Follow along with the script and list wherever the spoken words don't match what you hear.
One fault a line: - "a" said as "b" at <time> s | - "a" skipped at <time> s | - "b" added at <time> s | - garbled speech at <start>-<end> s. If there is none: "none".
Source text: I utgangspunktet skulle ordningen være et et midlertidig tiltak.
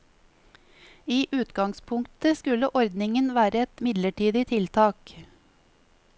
- "et" skipped at 3.9 s